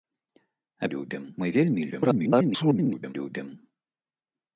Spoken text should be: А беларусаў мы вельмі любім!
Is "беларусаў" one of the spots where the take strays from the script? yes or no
yes